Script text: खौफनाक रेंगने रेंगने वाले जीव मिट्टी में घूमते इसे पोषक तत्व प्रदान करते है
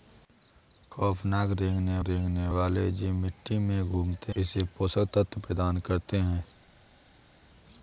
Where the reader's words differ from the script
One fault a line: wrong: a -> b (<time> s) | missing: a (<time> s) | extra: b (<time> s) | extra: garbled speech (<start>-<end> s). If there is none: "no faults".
no faults